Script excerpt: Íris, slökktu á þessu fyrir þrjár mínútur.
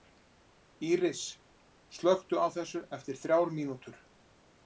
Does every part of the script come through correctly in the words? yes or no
no